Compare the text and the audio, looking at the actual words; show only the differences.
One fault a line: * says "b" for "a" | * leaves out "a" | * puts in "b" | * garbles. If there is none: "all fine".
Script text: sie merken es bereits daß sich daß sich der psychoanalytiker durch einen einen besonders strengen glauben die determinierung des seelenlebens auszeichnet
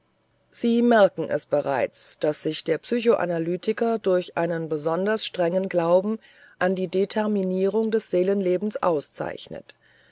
* leaves out "daß sich"
* leaves out "einen"
* puts in "an"